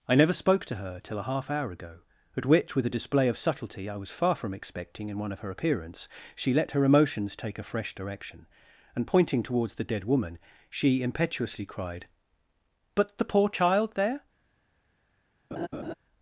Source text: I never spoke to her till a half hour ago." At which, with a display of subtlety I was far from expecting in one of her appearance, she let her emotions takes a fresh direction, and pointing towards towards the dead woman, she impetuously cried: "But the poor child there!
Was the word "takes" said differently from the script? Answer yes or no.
yes